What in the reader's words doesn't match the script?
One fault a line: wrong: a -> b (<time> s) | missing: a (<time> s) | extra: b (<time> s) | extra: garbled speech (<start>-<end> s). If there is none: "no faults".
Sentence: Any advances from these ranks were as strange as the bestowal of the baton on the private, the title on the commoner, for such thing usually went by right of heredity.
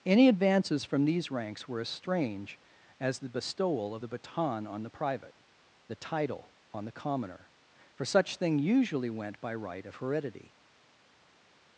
no faults